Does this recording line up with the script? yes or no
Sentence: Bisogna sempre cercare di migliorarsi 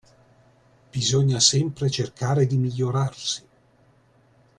yes